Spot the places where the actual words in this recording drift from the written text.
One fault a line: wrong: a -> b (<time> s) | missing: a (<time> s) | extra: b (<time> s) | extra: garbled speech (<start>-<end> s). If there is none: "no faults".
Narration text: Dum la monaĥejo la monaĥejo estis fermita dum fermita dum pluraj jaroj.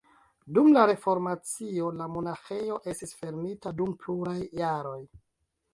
wrong: monaĥejo -> reformacio (0.9 s)
missing: fermita dum (4.0 s)